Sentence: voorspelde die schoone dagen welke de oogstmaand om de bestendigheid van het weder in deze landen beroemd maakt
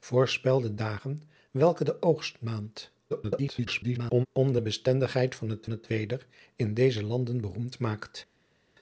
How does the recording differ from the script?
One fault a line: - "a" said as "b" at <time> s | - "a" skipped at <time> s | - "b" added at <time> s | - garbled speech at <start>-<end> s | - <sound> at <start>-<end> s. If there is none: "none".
- "die schoone" skipped at 0.8 s
- garbled speech at 3.1-4.3 s
- "het" added at 5.7 s